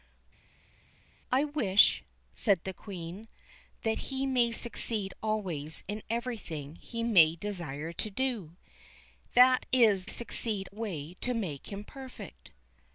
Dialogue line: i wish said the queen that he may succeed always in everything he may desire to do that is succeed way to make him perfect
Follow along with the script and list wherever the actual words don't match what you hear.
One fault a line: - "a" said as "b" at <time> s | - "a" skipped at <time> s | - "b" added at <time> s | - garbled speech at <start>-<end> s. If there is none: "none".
none